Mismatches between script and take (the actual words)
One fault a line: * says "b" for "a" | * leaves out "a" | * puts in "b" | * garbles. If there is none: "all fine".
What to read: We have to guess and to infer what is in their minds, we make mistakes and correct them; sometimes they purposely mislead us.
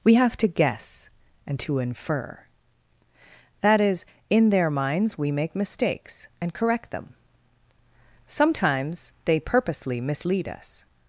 * says "that" for "what"